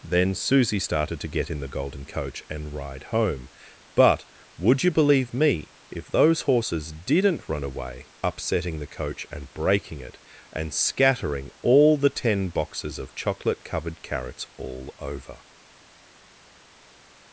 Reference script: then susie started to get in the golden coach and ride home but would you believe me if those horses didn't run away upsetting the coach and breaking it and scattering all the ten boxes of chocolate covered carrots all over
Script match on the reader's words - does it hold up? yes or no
yes